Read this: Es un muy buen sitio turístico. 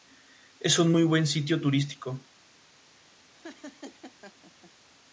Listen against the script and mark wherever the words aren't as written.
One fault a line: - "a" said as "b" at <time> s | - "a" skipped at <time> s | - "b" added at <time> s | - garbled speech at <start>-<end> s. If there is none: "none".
none